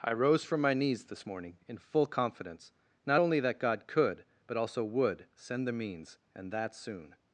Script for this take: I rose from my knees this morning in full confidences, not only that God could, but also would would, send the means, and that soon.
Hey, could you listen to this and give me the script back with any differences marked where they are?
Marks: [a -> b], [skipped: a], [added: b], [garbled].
I rose from my knees this morning in full [confidences, -> confidence] not only that God could, but also would [skipped: would,] send the means, and that soon.